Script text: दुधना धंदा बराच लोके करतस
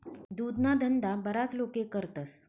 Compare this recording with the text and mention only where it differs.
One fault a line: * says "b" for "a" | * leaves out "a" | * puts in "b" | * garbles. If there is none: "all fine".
all fine